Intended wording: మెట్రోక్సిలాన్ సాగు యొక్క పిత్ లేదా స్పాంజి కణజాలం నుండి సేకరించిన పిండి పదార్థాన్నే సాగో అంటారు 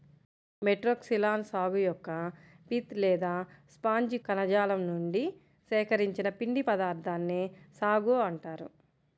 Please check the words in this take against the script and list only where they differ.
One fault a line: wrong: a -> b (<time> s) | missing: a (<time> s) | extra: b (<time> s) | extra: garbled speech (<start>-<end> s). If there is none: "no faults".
no faults